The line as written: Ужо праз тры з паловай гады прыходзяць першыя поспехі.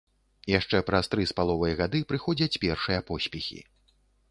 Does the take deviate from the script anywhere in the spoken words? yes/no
yes